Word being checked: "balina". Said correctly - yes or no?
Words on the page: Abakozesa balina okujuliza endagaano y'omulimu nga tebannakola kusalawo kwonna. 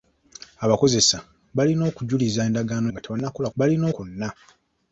yes